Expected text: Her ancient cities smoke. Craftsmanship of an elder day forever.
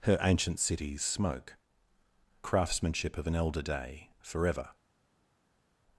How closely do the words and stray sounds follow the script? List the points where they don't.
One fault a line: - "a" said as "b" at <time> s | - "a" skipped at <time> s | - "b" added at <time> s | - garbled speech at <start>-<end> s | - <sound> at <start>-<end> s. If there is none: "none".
none